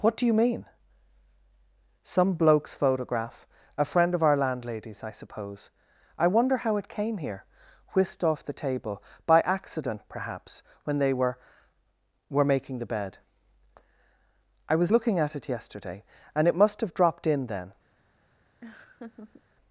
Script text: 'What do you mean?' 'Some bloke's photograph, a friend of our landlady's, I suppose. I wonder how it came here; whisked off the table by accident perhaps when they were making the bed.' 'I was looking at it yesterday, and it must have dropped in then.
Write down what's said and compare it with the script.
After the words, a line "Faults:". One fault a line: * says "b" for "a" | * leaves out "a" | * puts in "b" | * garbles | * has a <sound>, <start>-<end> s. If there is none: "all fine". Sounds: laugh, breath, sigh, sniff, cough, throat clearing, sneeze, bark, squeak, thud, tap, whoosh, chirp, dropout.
'What do you mean?' 'Some bloke's photograph, a friend of our landlady's, I suppose. I wonder how it came here; whisked off the table by accident perhaps when they were were making the bed.' 'I was looking at it yesterday, and it must have dropped in then.
Faults:
* puts in "were"
* has a laugh, 18.6-19.4 s